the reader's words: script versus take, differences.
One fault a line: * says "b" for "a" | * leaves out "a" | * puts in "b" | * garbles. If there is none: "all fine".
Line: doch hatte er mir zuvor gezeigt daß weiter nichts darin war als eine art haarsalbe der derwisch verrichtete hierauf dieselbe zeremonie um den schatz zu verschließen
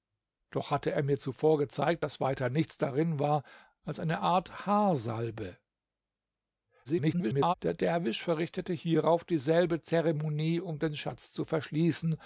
* garbles